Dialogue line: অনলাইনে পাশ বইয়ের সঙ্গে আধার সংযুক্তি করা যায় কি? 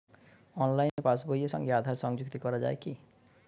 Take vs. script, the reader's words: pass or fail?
pass